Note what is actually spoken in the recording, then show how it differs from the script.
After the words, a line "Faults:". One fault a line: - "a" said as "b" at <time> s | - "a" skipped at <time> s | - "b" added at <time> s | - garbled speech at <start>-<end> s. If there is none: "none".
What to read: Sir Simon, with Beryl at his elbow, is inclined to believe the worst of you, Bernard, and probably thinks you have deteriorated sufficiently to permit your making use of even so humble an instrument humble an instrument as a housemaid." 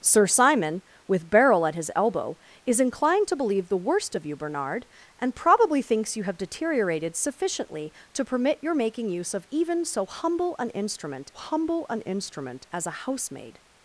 Sir Simon, with Beryl at his elbow, is inclined to believe the worst of you, Bernard, and probably thinks you have deteriorated sufficiently to permit your making use of even so humble an instrument humble an instrument as a housemaid."
Faults:
none